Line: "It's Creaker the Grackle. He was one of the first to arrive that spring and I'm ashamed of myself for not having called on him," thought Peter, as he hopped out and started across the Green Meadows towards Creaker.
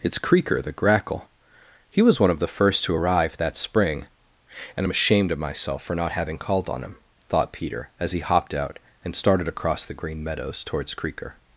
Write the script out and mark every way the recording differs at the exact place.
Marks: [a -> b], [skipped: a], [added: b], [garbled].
"It's Creaker the Grackle. He was one of the first to arrive that spring and I'm ashamed of myself for not having called on him," thought Peter, as he hopped out and started across the Green Meadows towards Creaker.